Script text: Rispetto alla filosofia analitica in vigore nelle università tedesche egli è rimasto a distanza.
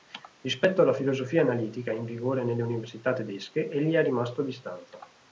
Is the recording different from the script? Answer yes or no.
no